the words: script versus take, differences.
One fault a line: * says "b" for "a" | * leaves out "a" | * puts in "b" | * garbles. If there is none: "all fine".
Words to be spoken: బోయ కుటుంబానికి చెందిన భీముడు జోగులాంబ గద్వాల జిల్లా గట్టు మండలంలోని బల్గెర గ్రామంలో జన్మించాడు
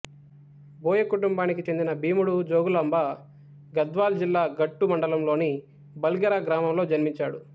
all fine